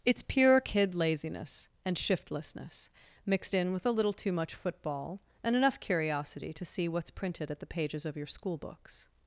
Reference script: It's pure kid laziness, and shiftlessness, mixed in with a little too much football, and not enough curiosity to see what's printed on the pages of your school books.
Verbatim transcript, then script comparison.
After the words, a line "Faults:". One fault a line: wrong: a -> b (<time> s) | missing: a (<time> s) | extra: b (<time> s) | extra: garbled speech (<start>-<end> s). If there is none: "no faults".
It's pure kid laziness, and shiftlessness, mixed in with a little too much football, and enough curiosity to see what's printed at the pages of your school books.
Faults:
missing: not (5.5 s)
wrong: on -> at (7.5 s)